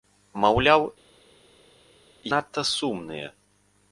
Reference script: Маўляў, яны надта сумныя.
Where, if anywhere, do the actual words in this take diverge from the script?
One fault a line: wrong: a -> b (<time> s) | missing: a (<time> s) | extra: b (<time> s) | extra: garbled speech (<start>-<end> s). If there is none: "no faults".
missing: яны (0.9 s)